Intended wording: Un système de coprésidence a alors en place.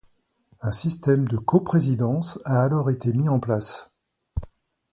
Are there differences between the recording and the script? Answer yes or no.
yes